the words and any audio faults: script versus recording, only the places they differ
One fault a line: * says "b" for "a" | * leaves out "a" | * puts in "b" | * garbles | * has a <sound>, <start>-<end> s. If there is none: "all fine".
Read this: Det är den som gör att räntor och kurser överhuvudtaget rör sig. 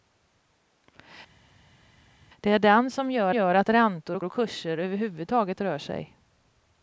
* puts in "gör"
* puts in "och"